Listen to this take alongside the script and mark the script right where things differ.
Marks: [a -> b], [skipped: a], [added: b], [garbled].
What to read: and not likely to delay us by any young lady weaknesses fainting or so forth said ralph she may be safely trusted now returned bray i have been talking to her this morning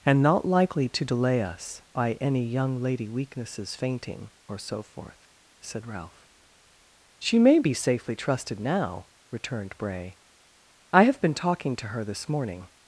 and not likely to delay us by any young lady weaknesses fainting or so forth said ralph she may be safely trusted now returned bray i have been talking to her this morning